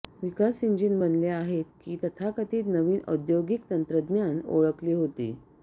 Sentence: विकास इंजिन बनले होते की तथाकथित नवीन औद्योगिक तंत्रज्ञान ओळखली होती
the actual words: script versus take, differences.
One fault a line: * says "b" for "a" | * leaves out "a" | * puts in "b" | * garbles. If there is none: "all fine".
* says "आहेत" for "होते"